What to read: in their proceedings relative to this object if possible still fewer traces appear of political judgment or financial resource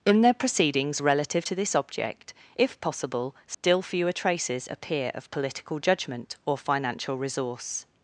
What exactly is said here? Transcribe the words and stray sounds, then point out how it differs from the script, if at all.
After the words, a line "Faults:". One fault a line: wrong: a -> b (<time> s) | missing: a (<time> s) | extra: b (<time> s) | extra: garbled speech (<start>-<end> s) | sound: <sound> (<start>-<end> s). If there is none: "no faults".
in their proceedings relative to this object if possible still fewer traces appear of political judgment or financial resource
Faults:
sound: dropout (3.5-3.6 s)